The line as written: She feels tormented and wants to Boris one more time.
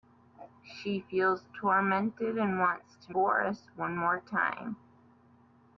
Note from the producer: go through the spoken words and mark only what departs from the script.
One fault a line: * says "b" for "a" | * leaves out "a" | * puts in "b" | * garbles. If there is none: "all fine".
all fine